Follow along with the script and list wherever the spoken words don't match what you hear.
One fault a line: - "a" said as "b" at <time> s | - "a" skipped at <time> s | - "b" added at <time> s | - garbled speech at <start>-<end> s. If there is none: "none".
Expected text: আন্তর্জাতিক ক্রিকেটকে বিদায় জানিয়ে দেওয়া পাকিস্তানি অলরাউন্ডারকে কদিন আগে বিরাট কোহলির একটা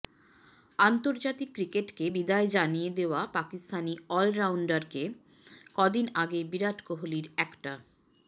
none